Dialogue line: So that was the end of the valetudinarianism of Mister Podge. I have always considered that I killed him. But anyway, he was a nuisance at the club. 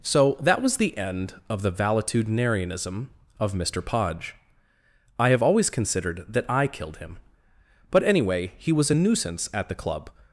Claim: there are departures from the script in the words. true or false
false